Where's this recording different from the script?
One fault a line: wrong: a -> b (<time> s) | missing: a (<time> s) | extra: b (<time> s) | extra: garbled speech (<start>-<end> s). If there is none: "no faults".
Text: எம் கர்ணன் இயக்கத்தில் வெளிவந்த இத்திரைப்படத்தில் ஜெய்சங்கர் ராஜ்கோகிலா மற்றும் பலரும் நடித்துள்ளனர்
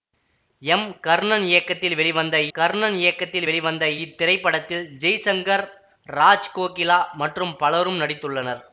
extra: கர்ணன் இயக்கத்தில் வெளிவந்த (2.5 s)